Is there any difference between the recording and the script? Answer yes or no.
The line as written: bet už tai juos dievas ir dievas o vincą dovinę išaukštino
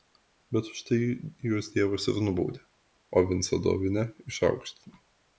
yes